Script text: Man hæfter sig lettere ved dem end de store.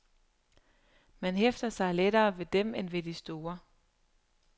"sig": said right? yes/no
yes